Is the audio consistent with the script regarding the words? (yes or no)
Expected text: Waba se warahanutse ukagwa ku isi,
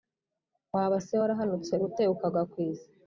no